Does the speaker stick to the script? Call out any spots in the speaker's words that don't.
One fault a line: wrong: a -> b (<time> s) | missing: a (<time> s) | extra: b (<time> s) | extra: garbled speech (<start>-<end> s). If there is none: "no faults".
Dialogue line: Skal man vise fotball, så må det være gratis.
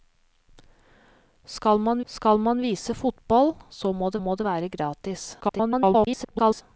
extra: skal man (2.0 s)
extra: må det (4.2 s)
extra: garbled speech (5.4-6.6 s)